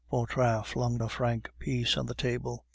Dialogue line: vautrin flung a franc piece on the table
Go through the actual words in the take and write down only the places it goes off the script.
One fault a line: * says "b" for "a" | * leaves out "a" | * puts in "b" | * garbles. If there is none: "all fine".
all fine